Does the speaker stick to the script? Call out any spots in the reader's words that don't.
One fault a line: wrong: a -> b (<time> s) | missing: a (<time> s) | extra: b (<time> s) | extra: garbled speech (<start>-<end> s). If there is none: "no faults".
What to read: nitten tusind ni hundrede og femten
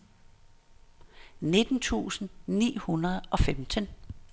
no faults